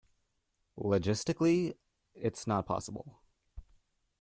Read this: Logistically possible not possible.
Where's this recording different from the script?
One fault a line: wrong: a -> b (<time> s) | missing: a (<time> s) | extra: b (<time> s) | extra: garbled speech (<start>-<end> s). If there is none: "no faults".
wrong: possible -> it's (2.1 s)